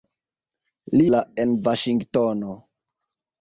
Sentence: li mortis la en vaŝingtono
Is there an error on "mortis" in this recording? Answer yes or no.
yes